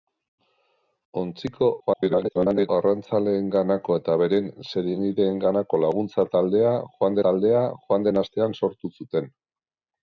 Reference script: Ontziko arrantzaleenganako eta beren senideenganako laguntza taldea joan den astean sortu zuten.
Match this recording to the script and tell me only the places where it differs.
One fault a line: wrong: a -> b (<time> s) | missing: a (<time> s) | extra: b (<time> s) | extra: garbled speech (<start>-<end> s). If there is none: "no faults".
extra: garbled speech (1.8-2.7 s)
extra: taldea joan (7.3 s)